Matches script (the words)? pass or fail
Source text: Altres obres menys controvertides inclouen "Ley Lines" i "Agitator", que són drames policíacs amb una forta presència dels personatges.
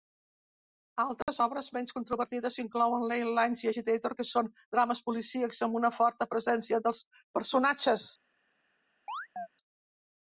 pass